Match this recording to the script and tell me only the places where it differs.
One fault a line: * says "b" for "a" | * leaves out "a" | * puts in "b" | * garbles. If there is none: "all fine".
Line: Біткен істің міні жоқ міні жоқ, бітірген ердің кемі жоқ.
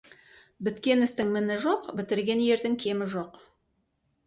* leaves out "міні жоқ"